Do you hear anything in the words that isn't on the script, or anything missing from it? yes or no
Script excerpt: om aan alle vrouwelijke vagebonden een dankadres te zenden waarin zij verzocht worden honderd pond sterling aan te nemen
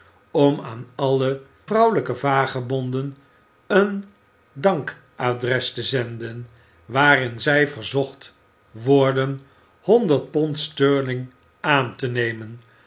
no